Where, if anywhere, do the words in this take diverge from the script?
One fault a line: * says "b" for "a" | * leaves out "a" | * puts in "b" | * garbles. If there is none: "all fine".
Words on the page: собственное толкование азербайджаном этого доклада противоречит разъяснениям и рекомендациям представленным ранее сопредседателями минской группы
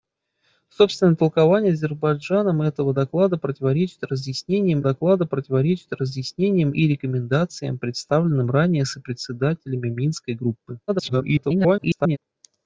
* puts in "доклада противоречит разъяснениям"
* garbles